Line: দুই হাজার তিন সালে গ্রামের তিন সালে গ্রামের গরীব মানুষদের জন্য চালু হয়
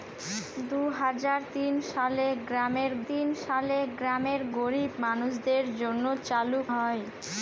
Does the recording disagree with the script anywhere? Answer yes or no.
no